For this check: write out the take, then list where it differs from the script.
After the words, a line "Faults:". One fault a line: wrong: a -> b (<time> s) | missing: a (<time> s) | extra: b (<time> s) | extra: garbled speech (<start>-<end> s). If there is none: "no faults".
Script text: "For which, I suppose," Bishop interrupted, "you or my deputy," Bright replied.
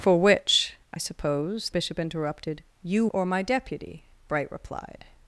"For which, I suppose," Bishop interrupted, "you or my deputy," Bright replied.
Faults:
no faults